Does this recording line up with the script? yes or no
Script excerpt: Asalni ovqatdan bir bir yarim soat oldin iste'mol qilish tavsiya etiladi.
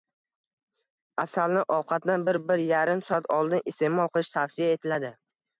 yes